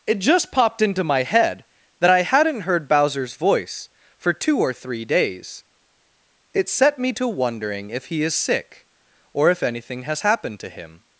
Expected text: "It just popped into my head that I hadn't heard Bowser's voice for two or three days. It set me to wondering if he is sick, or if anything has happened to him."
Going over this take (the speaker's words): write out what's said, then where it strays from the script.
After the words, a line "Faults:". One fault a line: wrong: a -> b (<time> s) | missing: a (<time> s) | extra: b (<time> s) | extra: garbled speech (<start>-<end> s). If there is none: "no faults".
"It just popped into my head that I hadn't heard Bowser's voice for two or three days. It set me to wondering if he is sick, or if anything has happened to him."
Faults:
no faults